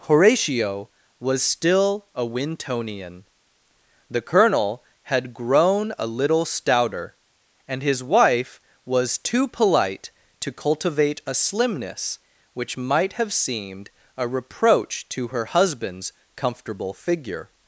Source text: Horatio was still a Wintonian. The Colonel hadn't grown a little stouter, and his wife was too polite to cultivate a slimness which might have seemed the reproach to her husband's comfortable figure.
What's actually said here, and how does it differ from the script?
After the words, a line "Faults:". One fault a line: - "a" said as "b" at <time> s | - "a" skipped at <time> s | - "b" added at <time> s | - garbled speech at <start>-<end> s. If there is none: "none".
Horatio was still a Wintonian. The Colonel had grown a little stouter, and his wife was too polite to cultivate a slimness which might have seemed a reproach to her husband's comfortable figure.
Faults:
- "hadn't" said as "had" at 5.0 s
- "the" said as "a" at 14.2 s